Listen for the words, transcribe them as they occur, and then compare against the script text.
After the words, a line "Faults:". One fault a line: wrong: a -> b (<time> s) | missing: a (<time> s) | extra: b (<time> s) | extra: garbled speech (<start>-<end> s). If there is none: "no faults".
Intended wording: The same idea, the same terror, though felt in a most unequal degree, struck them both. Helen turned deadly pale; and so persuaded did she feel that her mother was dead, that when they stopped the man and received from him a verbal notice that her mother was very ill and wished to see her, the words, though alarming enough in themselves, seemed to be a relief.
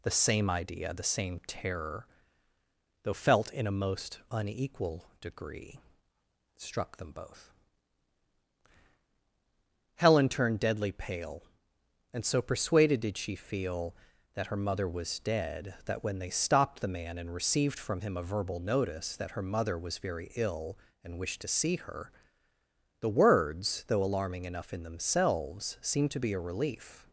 The same idea, the same terror, though felt in a most unequal degree, struck them both. Helen turned deadly pale; and so persuaded did she feel that her mother was dead, that when they stopped the man and received from him a verbal notice that her mother was very ill and wished to see her, the words, though alarming enough in themselves, seemed to be a relief.
Faults:
no faults